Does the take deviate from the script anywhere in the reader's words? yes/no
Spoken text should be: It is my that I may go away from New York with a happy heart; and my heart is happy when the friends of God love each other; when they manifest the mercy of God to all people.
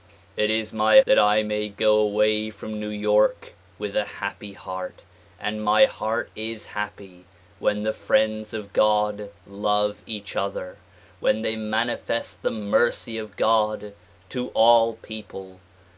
no